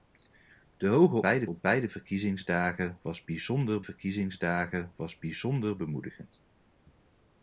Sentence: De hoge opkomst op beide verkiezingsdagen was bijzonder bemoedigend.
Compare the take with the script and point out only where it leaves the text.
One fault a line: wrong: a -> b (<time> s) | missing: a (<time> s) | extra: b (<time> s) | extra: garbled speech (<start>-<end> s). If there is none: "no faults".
wrong: opkomst -> beide (1.2 s)
extra: verkiezingsdagen was bijzonder (3.8 s)